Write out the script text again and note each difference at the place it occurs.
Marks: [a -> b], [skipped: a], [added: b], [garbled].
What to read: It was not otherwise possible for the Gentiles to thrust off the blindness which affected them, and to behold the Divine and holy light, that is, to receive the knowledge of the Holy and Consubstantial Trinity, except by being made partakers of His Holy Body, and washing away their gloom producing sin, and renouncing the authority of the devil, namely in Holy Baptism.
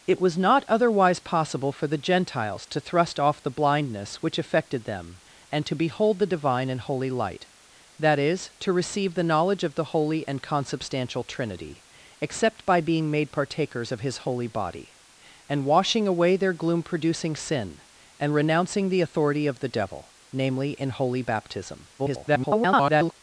It was not otherwise possible for the Gentiles to thrust off the blindness which affected them, and to behold the Divine and holy light, that is, to receive the knowledge of the Holy and Consubstantial Trinity, except by being made partakers of His Holy Body, and washing away their gloom producing sin, and renouncing the authority of the devil, namely in Holy Baptism. [garbled]